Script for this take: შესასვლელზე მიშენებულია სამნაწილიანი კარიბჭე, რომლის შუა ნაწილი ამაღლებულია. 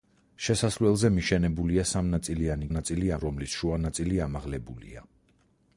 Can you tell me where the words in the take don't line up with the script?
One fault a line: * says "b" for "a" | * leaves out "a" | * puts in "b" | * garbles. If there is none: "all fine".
* says "ნაწილი" for "კარიბჭე"